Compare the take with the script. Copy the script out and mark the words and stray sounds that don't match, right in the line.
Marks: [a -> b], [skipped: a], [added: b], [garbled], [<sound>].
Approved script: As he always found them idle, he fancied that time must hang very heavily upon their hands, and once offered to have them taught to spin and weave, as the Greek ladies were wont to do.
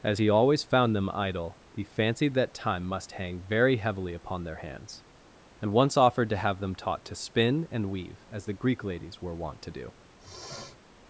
As he always found them idle, he fancied that time must hang very heavily upon their hands, and once offered to have them taught to spin and weave, as the Greek ladies were wont to do. [sniff]